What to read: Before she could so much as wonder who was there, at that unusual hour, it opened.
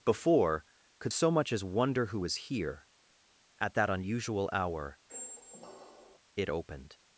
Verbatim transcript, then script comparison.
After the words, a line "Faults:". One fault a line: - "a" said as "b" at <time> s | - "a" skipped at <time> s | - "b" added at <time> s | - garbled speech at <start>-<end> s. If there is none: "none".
Before could so much as wonder who was here, at that unusual hour, it opened.
Faults:
- "she" skipped at 0.7 s
- "there" said as "here" at 2.3 s